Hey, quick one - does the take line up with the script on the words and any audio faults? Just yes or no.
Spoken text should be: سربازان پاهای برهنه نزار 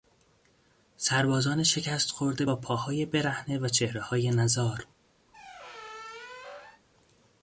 no